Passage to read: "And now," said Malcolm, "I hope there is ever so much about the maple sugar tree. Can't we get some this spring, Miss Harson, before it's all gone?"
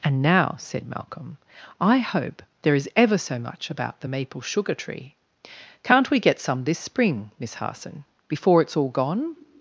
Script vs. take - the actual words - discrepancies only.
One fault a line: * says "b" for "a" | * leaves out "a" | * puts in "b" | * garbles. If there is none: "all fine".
all fine